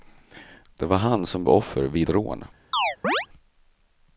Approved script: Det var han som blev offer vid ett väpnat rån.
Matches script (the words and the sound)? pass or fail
fail